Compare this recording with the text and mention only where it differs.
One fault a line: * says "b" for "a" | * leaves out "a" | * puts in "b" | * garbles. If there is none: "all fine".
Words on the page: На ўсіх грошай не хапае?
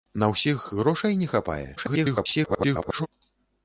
* garbles